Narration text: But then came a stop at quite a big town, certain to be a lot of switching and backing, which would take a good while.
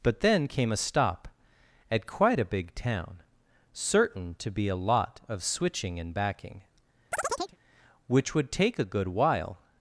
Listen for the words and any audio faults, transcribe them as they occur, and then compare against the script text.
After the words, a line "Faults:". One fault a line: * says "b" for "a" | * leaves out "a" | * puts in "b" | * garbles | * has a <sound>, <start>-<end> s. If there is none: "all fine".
But then came a stop at quite a big town, certain to be a lot of switching and backing, which would take a good while.
Faults:
* has a chirp, 7.1-7.6 s